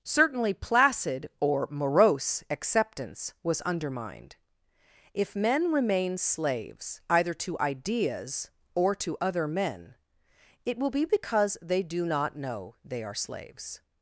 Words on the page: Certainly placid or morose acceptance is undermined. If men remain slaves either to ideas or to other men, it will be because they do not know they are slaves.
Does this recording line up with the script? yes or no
no